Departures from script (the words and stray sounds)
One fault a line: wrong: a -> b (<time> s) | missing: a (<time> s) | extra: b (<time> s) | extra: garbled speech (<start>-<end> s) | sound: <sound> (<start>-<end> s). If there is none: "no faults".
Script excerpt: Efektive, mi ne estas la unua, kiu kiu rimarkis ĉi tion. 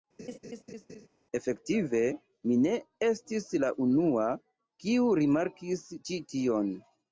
sound: laugh (0.2-1.1 s)
wrong: estas -> estis (3.1 s)
missing: kiu (5.1 s)